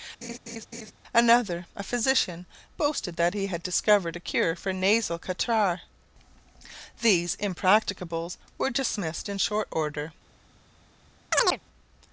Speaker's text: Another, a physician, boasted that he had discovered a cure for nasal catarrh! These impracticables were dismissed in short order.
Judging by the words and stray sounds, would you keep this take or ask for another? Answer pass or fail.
fail